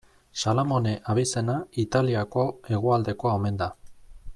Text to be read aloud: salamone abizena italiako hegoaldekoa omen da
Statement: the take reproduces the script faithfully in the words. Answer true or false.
true